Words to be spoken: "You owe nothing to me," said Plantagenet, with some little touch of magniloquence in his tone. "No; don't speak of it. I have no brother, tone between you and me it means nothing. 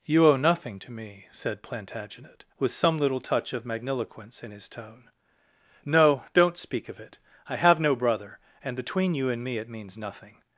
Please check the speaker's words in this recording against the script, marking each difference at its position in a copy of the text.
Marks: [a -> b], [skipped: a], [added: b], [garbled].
"You owe nothing to me," said Plantagenet, with some little touch of magniloquence in his tone. "No; don't speak of it. I have no brother, [tone -> and] between you and me it means nothing.